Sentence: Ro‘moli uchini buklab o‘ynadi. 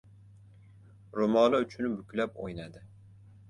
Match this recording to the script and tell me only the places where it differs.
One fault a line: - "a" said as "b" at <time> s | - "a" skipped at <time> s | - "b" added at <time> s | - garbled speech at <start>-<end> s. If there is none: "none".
none